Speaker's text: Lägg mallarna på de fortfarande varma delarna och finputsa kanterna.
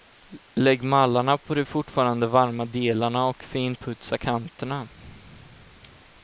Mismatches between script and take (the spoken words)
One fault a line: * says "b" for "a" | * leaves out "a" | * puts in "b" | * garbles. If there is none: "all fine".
all fine